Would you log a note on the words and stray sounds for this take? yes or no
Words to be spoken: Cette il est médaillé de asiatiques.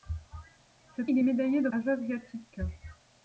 no